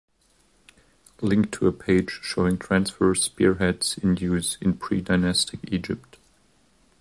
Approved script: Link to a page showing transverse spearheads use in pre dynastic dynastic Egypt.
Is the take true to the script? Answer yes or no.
no